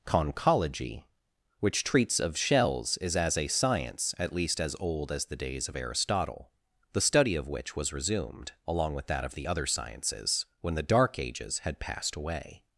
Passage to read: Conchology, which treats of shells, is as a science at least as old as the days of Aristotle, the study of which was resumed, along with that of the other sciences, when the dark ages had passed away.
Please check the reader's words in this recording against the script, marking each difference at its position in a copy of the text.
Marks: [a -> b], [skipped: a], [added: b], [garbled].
Conchology, which treats of shells, is as a science at least as old as the days of Aristotle, the study of which was resumed, along with that of the other sciences, when the dark ages had passed away.